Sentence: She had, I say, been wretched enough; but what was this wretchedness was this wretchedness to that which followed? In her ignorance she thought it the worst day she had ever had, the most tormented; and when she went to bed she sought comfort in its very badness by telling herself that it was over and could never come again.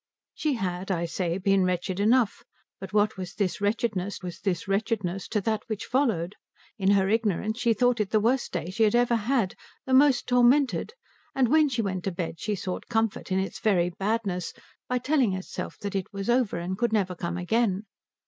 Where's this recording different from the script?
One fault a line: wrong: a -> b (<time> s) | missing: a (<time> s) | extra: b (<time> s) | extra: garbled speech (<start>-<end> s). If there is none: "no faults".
no faults